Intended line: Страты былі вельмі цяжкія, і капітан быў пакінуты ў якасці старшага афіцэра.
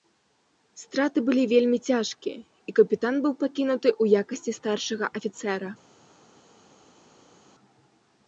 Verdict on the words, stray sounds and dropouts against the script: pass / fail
pass